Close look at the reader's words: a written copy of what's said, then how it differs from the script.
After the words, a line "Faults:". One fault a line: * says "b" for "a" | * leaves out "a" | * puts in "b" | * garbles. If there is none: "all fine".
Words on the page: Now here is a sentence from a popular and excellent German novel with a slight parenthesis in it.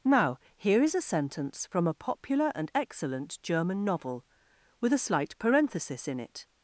Now here is a sentence from a popular and excellent German novel with a slight parenthesis in it.
Faults:
all fine